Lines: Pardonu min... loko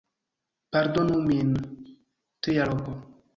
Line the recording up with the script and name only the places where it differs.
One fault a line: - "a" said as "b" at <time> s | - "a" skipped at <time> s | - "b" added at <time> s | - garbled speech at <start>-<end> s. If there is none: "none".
- "tria" added at 2.4 s